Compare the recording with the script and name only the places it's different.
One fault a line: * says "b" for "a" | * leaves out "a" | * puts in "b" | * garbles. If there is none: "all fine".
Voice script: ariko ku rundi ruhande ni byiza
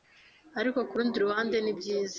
all fine